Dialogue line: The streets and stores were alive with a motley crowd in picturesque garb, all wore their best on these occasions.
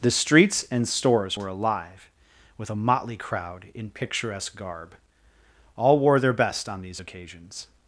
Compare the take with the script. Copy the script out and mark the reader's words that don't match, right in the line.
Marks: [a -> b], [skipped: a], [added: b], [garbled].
The streets and stores were alive with a motley crowd in picturesque garb, all wore their best on these occasions.